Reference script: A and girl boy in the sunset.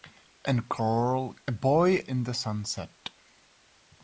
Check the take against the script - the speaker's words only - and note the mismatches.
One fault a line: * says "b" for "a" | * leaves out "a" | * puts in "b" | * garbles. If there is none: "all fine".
all fine